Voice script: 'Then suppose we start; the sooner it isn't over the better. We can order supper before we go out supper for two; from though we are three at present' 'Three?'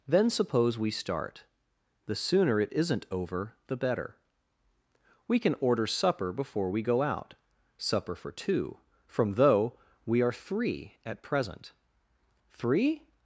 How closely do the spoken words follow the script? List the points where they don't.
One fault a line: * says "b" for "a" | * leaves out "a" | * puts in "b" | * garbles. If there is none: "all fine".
all fine